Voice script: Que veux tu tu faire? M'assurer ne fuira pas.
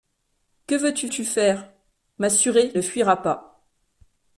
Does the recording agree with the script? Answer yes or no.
yes